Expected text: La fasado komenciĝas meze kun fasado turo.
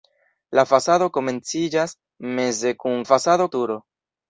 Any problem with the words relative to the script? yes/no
no